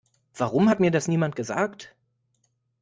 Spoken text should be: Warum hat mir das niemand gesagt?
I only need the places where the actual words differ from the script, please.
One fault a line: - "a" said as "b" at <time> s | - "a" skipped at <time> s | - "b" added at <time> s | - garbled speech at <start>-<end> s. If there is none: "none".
none